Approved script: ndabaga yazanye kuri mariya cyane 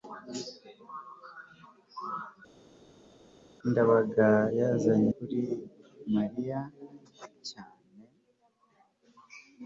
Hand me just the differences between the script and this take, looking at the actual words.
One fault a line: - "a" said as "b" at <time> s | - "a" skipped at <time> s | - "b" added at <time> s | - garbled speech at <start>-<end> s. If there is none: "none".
none